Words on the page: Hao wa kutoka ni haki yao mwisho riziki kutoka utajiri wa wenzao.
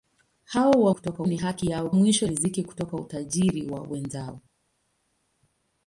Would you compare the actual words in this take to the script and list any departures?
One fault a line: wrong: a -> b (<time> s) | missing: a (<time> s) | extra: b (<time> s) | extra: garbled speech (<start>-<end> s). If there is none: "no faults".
no faults